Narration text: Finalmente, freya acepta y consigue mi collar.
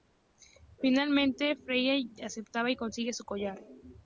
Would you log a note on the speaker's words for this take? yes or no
yes